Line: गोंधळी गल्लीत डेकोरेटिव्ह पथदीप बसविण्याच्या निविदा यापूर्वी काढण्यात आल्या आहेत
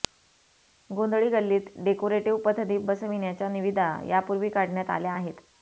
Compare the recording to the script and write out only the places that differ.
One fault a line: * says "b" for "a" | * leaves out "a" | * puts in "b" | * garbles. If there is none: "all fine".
all fine